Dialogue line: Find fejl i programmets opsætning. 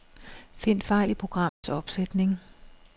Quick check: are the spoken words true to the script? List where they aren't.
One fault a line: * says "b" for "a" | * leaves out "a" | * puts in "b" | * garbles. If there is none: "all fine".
all fine